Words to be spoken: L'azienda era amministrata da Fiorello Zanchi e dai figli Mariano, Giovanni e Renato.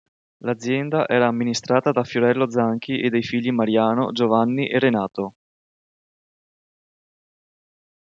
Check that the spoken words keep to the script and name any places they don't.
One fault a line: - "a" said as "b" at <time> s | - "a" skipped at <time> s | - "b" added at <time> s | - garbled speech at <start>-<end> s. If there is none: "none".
none